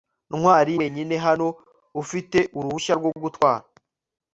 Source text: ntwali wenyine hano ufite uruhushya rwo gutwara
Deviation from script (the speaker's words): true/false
false